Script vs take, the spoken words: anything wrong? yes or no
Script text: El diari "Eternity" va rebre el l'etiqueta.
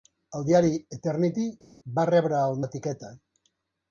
no